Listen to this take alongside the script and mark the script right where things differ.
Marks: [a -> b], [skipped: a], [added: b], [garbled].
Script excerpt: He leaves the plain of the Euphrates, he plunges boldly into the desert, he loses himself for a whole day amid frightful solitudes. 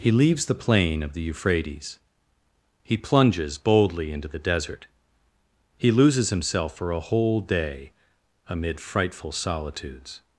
He leaves the plain of the Euphrates, he plunges boldly into the desert, he loses himself for a whole day amid frightful solitudes.